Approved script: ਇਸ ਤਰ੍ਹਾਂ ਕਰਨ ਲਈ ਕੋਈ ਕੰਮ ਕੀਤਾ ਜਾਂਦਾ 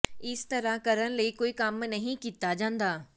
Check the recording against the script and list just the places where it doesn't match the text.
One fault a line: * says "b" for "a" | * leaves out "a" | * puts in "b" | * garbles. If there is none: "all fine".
* puts in "ਨਹੀਂ"